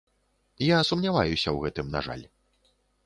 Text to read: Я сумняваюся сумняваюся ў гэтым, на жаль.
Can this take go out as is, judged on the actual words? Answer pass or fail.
fail